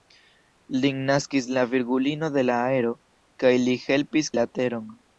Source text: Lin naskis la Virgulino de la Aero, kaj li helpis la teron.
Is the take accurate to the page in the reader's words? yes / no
yes